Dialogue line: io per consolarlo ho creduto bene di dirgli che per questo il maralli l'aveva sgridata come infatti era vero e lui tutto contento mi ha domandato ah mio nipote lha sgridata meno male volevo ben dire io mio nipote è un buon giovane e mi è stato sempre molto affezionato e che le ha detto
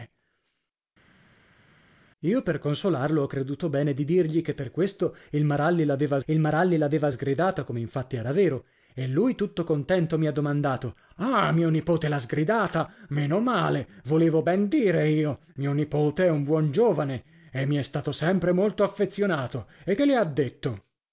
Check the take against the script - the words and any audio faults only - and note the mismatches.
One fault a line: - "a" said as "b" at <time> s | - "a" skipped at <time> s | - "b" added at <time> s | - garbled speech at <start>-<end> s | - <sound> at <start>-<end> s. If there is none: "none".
- "il maralli l'aveva" added at 6.3 s